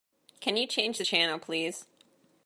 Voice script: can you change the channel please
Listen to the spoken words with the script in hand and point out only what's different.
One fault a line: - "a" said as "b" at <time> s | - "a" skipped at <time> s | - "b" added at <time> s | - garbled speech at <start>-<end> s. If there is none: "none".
none